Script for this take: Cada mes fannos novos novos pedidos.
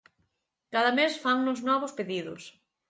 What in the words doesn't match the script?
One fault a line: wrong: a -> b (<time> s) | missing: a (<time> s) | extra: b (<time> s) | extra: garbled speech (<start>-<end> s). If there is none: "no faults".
missing: novos (1.9 s)